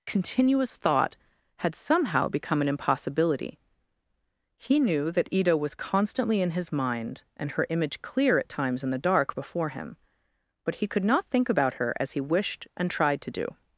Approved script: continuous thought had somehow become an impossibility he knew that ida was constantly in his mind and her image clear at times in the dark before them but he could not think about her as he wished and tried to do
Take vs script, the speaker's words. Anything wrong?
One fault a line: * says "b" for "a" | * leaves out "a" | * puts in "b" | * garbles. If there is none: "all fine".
* says "him" for "them"